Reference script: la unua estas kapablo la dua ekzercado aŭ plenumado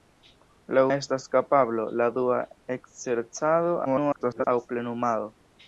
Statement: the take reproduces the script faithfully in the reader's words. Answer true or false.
false